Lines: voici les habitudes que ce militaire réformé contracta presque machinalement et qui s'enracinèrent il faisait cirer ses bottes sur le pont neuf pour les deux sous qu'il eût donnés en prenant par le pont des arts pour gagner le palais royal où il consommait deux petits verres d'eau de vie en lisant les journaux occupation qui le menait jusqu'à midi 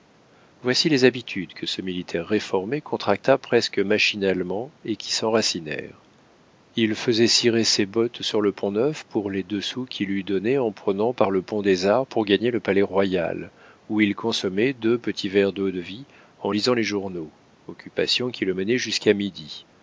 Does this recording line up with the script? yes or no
yes